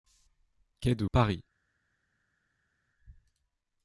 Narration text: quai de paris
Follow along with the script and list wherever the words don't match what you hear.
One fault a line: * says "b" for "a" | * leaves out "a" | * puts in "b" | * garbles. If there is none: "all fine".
all fine